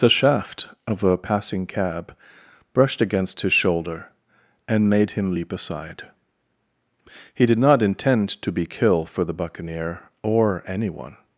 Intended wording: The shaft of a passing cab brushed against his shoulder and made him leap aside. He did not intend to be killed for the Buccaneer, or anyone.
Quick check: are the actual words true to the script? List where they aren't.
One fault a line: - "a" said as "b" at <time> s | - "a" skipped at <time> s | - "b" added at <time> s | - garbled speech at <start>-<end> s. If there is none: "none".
- "killed" said as "kill" at 8.6 s